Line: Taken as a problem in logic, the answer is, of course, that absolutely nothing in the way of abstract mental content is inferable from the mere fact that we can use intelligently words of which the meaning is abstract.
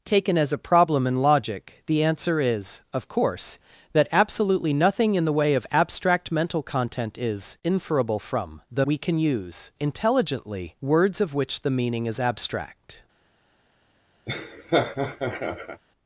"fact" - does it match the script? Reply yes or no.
no